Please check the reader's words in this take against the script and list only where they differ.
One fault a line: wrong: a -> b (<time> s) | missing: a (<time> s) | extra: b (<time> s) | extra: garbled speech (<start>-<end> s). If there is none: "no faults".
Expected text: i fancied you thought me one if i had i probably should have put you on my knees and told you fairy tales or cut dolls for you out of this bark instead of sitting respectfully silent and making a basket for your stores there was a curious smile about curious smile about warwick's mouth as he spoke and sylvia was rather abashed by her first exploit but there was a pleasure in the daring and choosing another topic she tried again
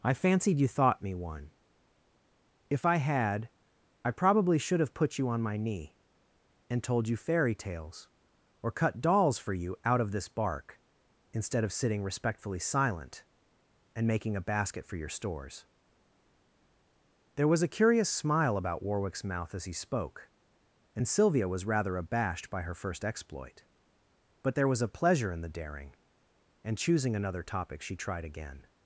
wrong: knees -> knee (5.6 s)
missing: curious smile about (18.8 s)